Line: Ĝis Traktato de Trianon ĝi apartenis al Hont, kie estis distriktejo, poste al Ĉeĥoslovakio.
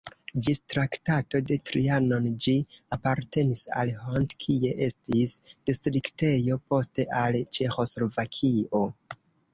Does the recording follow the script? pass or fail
pass